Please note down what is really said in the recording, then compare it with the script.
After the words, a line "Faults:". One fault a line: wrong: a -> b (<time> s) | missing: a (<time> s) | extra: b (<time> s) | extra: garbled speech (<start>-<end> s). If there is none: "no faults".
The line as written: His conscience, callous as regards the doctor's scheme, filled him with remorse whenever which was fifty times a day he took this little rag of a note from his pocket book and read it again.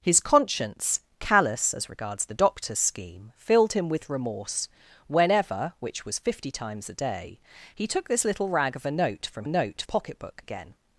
His conscience, callous as regards the doctor's scheme, filled him with remorse whenever which was fifty times a day he took this little rag of a note from note pocket book again.
Faults:
wrong: his -> note (9.5 s)
missing: and read it (10.4 s)